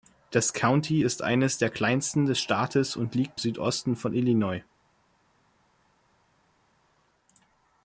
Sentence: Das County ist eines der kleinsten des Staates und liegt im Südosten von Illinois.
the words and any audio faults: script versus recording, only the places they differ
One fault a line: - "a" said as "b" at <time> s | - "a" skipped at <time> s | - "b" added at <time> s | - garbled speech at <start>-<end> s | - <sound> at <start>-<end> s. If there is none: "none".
- "im" skipped at 3.4 s